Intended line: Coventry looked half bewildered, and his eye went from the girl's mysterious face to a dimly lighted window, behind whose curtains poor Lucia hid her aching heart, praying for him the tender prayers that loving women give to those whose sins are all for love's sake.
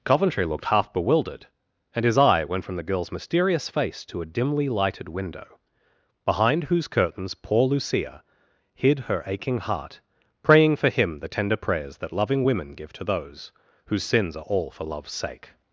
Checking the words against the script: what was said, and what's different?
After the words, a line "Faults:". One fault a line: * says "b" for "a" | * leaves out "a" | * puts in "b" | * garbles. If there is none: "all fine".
Coventry looked half bewildered, and his eye went from the girl's mysterious face to a dimly lighted window, behind whose curtains poor Lucia hid her aching heart, praying for him the tender prayers that loving women give to those whose sins are all for love's sake.
Faults:
all fine